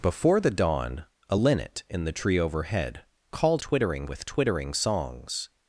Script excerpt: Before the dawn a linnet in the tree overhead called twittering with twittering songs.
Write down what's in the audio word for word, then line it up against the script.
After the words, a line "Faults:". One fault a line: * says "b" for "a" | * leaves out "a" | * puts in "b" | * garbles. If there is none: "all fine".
Before the dawn a linnet in the tree overhead called twittering with twittering songs.
Faults:
all fine